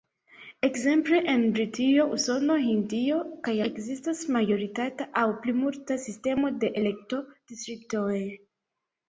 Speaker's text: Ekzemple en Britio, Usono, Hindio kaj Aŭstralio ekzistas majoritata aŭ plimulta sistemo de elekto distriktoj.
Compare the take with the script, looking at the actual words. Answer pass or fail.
fail